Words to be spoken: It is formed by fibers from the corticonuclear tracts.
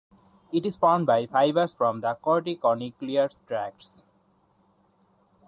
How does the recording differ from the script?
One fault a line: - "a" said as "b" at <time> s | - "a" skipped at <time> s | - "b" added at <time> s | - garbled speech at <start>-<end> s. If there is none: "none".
none